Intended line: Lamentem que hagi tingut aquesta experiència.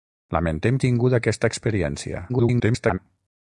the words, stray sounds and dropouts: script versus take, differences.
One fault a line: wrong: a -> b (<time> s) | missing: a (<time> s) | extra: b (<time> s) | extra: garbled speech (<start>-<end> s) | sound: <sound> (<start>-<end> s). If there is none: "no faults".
missing: que hagi (0.8 s)
extra: garbled speech (2.3-3.0 s)